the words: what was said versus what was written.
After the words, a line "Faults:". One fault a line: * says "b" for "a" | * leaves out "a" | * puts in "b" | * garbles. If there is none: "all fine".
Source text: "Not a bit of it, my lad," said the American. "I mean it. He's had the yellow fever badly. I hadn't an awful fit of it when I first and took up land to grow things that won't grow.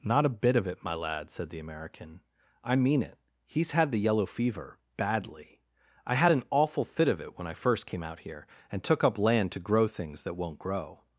"Not a bit of it, my lad," said the American. "I mean it. He's had the yellow fever badly. I had an awful fit of it when I first came out here and took up land to grow things that won't grow.
Faults:
* says "had" for "hadn't"
* puts in "came out here"